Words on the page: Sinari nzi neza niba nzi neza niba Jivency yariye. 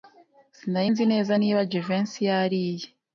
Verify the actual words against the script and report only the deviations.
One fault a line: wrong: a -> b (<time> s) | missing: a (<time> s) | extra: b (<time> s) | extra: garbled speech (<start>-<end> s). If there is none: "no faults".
missing: nzi neza niba (1.6 s)